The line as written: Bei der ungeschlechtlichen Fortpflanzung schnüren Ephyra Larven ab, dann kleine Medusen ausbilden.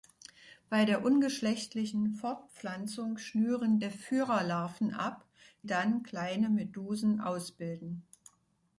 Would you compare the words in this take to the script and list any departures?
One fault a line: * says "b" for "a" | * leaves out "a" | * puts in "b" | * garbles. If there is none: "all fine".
all fine